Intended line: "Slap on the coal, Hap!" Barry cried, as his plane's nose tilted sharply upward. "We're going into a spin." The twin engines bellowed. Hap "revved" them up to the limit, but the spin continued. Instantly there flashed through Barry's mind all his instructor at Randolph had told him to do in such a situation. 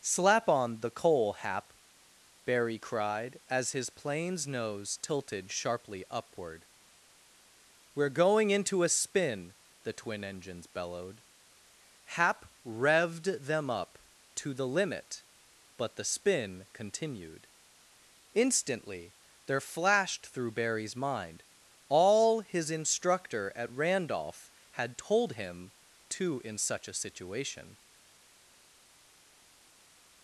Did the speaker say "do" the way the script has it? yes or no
no